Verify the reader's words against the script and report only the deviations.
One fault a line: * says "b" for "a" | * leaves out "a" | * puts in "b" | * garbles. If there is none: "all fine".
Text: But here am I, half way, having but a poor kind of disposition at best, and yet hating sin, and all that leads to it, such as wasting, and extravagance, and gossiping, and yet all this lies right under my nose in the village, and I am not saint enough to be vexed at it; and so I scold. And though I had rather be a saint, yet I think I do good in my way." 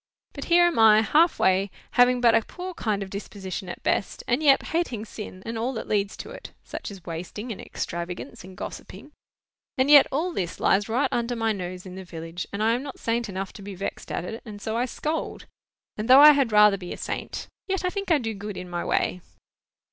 all fine